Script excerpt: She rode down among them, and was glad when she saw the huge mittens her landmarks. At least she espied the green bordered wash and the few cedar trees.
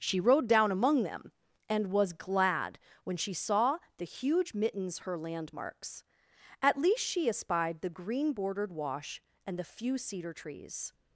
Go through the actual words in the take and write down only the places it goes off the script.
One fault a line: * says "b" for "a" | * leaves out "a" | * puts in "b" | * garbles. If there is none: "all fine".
all fine